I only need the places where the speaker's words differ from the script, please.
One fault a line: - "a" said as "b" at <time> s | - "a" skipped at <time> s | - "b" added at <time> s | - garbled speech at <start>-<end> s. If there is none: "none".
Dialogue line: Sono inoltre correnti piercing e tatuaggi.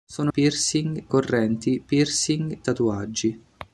- "inoltre" said as "piercing" at 0.3 s
- "e" skipped at 2.6 s